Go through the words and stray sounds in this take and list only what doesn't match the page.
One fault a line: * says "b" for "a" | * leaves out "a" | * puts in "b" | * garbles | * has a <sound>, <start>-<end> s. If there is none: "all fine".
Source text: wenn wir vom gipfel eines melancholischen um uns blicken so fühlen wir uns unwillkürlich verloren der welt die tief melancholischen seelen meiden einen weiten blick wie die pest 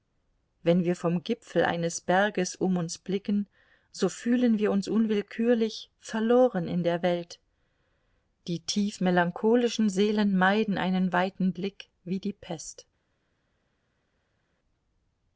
* says "berges" for "melancholischen"
* puts in "in"